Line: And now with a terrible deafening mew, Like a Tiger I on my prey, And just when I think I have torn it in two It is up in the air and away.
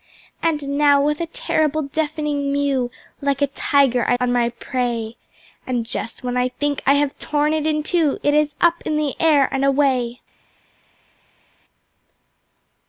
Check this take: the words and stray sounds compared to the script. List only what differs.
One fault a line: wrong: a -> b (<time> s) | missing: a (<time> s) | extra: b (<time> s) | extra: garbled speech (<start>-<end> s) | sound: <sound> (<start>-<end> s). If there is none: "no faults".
no faults